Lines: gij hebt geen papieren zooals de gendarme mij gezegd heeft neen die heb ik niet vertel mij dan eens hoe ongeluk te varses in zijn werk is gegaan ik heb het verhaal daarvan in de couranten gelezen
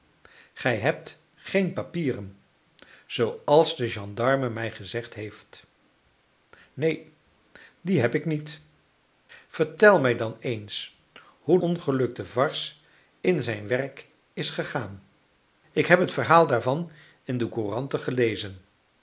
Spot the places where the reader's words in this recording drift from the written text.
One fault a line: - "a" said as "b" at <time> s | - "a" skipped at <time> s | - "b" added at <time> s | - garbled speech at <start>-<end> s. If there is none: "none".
none